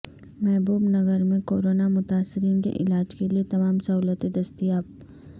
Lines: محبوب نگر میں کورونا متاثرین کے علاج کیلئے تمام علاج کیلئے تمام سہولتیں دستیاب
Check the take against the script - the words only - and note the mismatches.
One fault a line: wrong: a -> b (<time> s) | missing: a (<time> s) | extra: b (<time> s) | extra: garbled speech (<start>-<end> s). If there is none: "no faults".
missing: علاج کیلئے تمام (3.8 s)